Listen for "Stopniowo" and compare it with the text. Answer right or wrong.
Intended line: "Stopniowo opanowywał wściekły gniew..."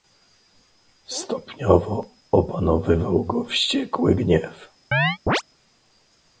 right